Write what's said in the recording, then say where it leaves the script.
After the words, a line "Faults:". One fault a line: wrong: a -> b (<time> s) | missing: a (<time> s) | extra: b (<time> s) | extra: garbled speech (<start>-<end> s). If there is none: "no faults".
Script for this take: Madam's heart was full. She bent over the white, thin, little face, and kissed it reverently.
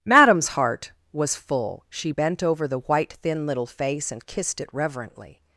Madam's heart was full. She bent over the white, thin, little face, and kissed it reverently.
Faults:
no faults